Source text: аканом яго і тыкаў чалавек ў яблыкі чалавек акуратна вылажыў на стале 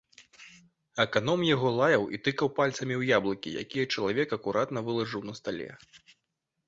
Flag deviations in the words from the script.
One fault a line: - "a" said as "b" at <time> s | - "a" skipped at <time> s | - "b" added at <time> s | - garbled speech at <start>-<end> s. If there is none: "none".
- "лаяў" added at 1.8 s
- "чалавек" said as "пальцамі" at 2.6 s
- "якія" added at 3.7 s